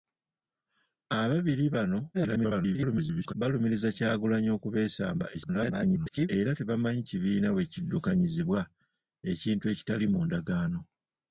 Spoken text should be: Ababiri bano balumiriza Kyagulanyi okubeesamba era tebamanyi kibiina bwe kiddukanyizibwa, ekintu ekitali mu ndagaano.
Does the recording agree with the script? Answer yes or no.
no